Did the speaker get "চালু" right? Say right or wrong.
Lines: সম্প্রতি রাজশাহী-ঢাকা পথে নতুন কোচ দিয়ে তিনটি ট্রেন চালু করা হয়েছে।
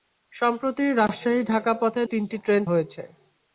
wrong